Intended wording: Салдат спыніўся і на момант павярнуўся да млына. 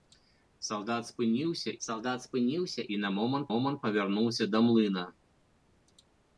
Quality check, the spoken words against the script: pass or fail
fail